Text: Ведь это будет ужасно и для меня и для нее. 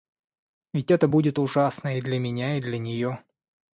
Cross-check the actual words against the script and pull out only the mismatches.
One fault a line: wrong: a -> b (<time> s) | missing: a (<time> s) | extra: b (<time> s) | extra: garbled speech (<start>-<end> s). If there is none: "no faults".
no faults